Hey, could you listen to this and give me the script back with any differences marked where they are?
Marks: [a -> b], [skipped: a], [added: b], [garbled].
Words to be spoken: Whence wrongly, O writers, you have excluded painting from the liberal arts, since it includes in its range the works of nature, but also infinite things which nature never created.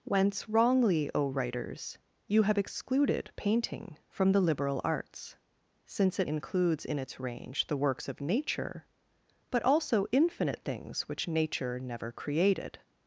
Whence wrongly, O writers, you have excluded painting from the liberal arts, since it includes in its range the works of nature, but also infinite things which nature never created.